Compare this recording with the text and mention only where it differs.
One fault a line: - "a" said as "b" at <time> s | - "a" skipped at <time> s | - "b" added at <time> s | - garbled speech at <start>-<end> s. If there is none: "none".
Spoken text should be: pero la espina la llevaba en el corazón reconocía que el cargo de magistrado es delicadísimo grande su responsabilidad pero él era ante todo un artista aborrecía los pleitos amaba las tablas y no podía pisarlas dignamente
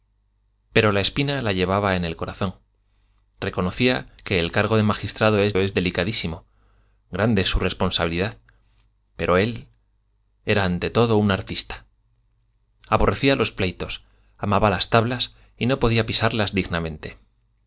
- "es" added at 5.6 s